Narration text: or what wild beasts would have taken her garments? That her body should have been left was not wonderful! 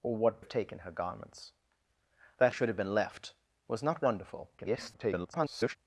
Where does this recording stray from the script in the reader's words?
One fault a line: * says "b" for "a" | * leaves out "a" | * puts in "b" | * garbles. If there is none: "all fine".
* leaves out "wild beasts would"
* leaves out "her body"
* garbles